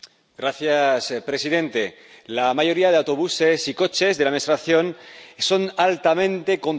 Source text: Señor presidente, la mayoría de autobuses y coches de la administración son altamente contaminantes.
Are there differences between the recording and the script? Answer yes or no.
no